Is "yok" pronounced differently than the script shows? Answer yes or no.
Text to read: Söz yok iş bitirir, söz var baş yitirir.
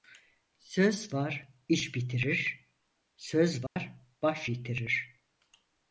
yes